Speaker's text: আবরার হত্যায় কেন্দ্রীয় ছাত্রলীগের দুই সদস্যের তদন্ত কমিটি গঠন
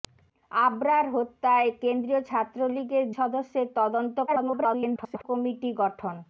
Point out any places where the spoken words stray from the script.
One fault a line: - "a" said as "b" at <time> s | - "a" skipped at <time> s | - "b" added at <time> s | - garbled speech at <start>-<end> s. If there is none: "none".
- "দুই" skipped at 3.0 s
- garbled speech at 4.3-5.2 s